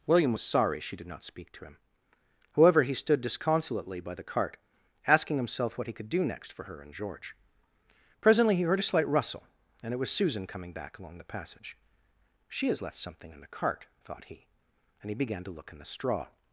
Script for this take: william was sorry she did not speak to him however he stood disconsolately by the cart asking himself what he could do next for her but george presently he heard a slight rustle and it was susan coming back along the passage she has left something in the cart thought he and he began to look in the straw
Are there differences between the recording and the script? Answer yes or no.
yes